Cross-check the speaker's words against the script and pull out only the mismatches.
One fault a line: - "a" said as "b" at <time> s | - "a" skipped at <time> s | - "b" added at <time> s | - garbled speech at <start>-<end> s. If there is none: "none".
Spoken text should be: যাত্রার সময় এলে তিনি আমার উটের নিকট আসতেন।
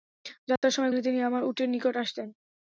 none